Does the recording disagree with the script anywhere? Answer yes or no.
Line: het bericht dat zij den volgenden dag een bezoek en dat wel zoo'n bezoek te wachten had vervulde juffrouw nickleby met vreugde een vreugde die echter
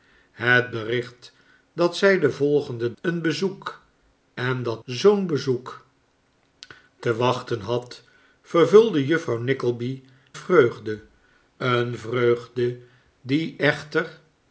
yes